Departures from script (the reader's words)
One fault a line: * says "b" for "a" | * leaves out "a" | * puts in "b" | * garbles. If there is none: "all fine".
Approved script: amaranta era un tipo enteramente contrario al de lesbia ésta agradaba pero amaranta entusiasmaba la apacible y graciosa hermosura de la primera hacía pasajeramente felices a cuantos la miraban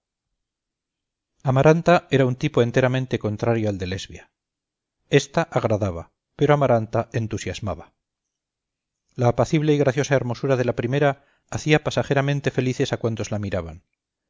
all fine